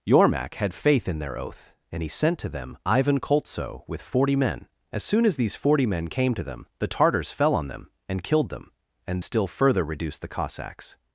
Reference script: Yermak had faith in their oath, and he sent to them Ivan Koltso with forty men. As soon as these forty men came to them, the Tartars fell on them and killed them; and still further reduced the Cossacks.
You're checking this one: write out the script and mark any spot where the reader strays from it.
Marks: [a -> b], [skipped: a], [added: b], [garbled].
Yermak had faith in their oath, and he sent to them Ivan Koltso with forty men. As soon as these forty men came to them, the Tartars fell on them and killed them; and still further reduced the Cossacks.